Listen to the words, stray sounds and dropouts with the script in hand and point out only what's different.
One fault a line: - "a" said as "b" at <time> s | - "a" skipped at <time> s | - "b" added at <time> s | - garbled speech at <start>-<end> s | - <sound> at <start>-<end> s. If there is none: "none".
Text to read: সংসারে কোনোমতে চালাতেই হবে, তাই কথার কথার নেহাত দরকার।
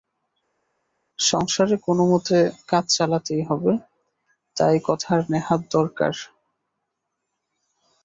- "কাজ" added at 2.7 s
- "কথার" skipped at 5.2 s